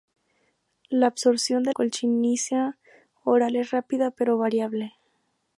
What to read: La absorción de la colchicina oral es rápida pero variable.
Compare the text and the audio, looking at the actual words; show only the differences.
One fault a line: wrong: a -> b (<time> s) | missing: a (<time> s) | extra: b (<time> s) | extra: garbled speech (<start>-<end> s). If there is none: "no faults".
missing: la (1.8 s)